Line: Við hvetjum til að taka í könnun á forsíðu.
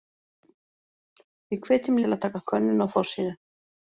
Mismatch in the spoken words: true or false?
false